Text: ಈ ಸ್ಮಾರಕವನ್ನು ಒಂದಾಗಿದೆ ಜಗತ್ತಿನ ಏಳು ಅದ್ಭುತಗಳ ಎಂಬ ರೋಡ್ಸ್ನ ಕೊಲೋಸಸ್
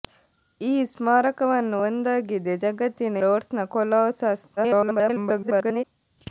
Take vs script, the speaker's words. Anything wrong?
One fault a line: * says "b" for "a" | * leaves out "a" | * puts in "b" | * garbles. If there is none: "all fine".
* leaves out "ಏಳು ಅದ್ಭುತಗಳ ಎಂಬ"
* garbles